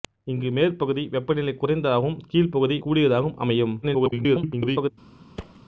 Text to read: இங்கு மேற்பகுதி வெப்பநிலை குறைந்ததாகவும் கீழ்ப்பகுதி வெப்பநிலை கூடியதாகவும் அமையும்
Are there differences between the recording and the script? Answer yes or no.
yes